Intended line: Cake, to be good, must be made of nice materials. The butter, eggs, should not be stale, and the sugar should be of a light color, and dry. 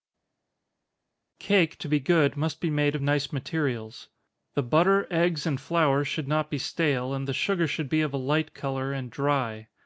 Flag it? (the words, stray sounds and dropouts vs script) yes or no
yes